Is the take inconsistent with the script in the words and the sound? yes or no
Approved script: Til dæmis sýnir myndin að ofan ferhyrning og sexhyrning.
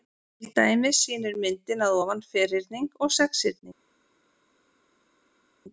no